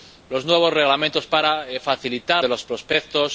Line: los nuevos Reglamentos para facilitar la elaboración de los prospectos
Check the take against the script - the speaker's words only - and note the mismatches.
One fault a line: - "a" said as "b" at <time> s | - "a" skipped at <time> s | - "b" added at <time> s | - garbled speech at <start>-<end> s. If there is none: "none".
- "la elaboración" skipped at 2.4 s